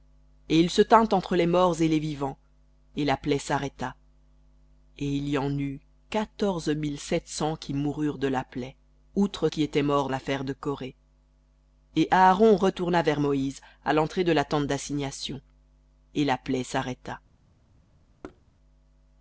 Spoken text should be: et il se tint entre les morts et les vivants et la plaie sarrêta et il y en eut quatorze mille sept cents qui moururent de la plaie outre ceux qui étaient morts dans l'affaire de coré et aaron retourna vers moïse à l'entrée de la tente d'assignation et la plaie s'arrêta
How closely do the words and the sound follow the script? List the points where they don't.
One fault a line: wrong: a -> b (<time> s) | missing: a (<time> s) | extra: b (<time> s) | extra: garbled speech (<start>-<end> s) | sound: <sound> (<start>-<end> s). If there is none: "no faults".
missing: ceux (9.5 s)
missing: dans (10.1 s)
sound: thud (18.2-18.4 s)